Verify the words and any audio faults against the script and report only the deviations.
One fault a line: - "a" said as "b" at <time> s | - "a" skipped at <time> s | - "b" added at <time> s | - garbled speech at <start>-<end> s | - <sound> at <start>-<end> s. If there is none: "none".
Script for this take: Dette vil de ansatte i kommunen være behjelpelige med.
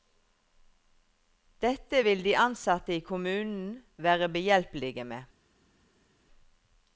none